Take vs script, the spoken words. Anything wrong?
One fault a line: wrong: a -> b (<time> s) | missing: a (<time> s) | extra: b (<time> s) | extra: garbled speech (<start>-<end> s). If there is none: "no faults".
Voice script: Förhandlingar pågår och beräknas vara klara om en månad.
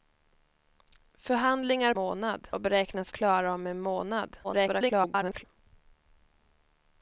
wrong: pågår -> månad (1.9 s)
missing: vara (3.1 s)
extra: garbled speech (4.4-5.4 s)